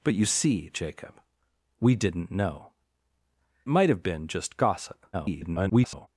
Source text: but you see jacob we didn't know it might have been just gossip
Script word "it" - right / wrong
wrong